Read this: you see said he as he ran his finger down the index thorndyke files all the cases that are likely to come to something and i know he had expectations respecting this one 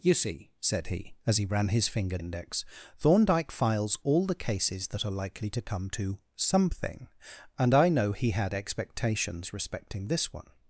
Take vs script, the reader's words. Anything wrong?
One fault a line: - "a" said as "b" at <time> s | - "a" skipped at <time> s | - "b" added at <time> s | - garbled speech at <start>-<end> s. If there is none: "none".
- "down the" skipped at 2.2 s